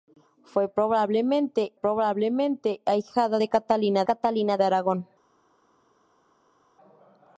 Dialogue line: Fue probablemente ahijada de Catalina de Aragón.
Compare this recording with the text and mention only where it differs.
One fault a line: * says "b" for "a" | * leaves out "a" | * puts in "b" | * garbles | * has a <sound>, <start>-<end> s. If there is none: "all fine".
* puts in "probablemente"
* puts in "Catalina"